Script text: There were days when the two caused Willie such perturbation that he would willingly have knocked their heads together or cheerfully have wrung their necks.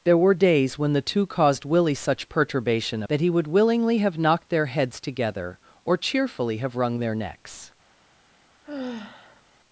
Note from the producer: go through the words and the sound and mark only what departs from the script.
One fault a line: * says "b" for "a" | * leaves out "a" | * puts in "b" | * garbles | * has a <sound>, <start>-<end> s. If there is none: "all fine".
* has a sigh, 8.6-9.4 s